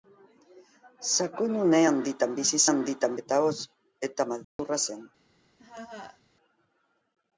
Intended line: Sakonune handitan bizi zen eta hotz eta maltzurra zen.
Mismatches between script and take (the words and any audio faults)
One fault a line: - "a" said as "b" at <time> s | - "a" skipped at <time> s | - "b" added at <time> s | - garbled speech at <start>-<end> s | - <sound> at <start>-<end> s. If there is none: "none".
- "zen" said as "handitan" at 2.7 s
- dropout at 4.4-4.6 s
- laugh at 5.6-6.2 s